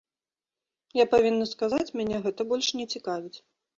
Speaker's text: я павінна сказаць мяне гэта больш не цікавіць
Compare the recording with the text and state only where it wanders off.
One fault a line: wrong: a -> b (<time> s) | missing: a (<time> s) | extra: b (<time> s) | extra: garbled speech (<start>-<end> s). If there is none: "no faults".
no faults